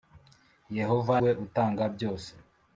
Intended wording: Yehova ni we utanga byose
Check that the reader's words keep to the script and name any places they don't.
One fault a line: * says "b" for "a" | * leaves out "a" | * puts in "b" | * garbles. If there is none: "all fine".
* leaves out "ni"